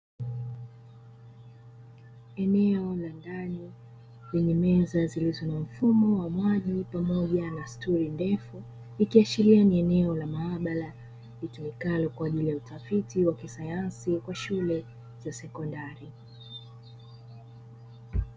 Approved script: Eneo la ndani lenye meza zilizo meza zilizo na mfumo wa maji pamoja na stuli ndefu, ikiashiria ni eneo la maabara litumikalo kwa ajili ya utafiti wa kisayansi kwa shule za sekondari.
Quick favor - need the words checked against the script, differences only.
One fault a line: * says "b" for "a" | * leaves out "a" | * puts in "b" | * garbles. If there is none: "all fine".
* leaves out "meza zilizo"